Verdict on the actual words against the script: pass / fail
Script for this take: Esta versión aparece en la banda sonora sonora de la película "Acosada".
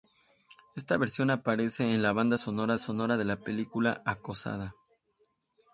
pass